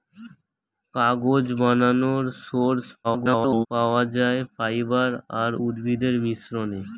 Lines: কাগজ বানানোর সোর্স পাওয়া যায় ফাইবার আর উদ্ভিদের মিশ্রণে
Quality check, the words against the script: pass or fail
fail